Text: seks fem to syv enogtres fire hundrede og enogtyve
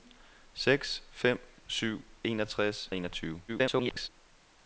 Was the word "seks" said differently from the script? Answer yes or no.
no